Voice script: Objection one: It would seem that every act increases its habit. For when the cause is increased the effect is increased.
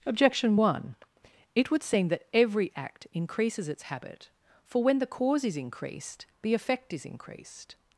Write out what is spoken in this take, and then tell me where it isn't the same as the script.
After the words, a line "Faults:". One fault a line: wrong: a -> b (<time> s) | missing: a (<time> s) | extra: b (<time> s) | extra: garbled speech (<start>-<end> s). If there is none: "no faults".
Objection one: It would seem that every act increases its habit. For when the cause is increased the effect is increased.
Faults:
no faults